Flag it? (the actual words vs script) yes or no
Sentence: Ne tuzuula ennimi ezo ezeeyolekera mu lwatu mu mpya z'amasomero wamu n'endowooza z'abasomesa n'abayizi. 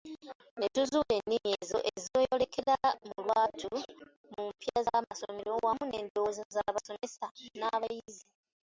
no